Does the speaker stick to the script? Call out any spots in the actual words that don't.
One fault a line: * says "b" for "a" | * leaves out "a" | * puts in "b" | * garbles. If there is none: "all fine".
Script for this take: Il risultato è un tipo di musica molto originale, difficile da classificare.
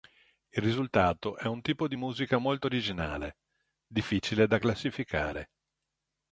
all fine